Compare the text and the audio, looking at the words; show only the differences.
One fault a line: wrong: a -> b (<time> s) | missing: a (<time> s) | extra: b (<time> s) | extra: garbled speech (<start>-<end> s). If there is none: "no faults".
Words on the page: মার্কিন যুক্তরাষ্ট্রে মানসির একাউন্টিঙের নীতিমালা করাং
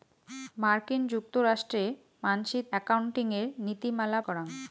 no faults